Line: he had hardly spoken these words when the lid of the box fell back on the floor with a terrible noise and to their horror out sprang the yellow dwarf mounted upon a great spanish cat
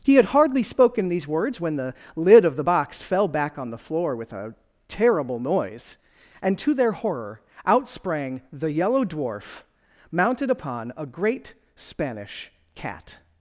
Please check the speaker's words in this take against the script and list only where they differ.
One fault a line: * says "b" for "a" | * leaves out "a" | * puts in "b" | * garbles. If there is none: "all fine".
all fine